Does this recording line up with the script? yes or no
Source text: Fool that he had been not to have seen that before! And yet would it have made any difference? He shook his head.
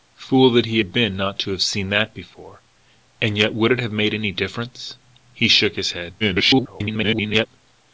no